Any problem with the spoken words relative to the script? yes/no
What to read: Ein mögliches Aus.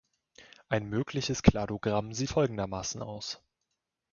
yes